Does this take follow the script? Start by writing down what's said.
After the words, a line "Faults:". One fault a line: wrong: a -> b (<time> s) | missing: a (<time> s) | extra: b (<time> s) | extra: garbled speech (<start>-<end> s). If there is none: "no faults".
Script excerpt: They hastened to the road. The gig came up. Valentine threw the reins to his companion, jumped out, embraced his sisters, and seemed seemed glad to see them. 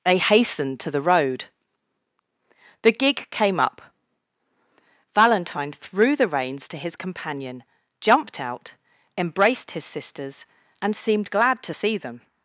They hastened to the road. The gig came up. Valentine threw the reins to his companion, jumped out, embraced his sisters, and seemed glad to see them.
Faults:
missing: seemed (11.3 s)